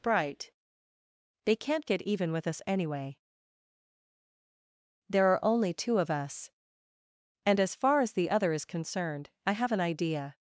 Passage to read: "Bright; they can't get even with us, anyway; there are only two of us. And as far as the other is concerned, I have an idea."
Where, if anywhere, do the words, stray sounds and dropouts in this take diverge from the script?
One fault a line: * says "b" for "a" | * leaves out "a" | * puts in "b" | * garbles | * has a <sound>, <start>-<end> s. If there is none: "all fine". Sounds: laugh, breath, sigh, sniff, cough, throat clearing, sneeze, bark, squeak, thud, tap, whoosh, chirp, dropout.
all fine